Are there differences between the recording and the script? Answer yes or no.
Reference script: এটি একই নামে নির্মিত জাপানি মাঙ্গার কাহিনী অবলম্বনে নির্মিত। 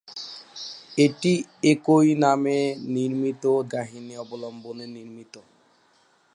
yes